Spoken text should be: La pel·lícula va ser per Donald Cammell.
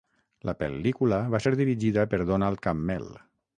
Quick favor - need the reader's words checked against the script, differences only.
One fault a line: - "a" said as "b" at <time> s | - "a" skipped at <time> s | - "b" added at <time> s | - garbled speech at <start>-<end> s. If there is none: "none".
- "dirigida" added at 1.6 s